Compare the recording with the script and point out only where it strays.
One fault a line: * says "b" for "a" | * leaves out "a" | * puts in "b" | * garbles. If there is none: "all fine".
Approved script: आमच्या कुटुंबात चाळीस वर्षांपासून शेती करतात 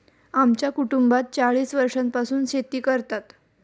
all fine